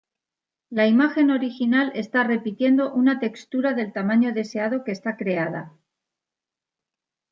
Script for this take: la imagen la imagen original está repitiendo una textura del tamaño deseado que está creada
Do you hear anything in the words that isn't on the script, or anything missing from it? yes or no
yes